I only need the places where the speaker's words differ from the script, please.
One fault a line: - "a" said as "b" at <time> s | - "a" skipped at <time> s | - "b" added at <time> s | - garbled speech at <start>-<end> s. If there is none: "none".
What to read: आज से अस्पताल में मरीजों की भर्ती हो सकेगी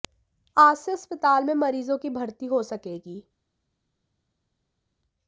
none